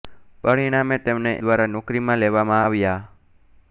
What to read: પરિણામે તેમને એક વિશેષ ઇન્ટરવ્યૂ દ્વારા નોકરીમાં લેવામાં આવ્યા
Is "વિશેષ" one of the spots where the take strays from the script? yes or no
yes